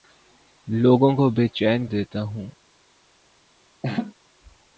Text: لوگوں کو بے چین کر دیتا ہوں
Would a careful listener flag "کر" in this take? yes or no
yes